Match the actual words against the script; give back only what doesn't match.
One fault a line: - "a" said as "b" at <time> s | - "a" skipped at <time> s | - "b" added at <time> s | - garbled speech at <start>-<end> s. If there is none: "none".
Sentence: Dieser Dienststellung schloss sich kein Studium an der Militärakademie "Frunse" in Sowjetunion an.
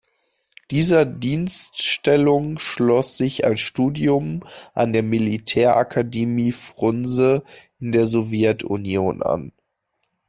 - "kein" said as "ein" at 3.5 s
- "der" added at 7.9 s